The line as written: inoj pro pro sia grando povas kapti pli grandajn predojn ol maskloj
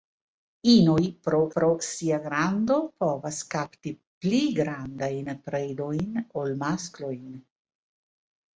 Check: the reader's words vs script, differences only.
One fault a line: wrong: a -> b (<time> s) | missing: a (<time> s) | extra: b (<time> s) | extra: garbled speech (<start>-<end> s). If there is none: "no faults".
no faults